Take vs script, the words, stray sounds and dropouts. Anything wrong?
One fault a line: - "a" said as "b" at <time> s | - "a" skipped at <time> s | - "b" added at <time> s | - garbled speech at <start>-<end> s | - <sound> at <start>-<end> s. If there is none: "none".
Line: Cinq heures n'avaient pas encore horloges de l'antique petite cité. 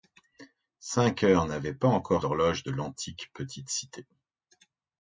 none